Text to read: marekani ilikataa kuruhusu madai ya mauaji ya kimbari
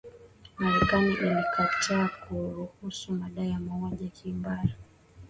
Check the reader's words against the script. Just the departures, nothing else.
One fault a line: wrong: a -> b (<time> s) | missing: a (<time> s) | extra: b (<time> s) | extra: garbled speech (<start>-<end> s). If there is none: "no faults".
no faults